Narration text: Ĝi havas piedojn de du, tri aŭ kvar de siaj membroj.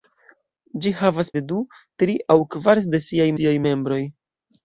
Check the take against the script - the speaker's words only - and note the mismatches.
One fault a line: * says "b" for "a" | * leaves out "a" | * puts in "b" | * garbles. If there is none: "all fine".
* leaves out "piedojn"
* puts in "siaj"